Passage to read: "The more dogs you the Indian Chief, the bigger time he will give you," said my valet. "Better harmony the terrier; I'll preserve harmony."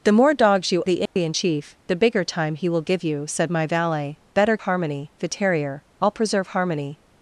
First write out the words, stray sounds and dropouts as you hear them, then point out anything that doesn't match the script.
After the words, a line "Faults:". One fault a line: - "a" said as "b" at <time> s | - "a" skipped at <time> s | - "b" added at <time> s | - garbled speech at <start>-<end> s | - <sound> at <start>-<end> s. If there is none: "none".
"The more dogs you the Indian Chief, the bigger time he will give you," said my valet. "Better harmony the terrier; I'll preserve harmony."
Faults:
- dropout at 1.1-1.2 s